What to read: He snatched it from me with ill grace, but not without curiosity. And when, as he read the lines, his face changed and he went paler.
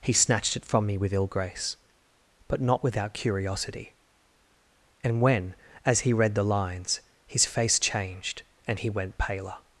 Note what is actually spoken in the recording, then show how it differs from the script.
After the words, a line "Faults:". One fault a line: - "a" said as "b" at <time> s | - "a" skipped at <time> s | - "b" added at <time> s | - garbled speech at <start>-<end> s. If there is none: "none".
He snatched it from me with ill grace, but not without curiosity. And when, as he read the lines, his face changed and he went paler.
Faults:
none